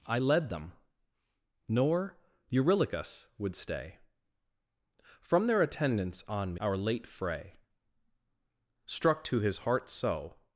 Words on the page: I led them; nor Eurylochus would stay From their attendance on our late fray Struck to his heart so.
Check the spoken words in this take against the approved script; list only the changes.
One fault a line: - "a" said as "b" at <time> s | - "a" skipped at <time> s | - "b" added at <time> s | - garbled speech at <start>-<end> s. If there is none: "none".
none